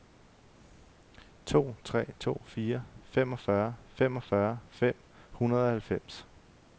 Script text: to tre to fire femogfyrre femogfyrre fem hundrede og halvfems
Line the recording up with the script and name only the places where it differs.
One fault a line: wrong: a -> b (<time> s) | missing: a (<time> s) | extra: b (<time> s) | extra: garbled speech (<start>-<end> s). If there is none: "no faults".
no faults